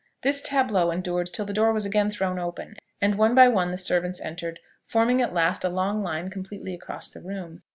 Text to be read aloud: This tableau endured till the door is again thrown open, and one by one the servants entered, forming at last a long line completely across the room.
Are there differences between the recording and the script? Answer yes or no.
yes